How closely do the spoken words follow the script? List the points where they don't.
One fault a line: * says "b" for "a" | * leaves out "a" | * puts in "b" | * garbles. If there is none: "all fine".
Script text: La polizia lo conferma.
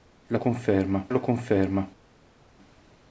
* says "conferma" for "polizia"